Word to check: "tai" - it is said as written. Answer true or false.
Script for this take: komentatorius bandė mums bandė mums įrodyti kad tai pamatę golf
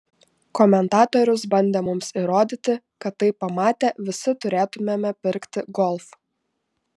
true